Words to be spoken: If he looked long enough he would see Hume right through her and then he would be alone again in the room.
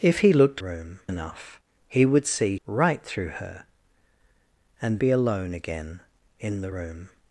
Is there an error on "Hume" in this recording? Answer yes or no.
yes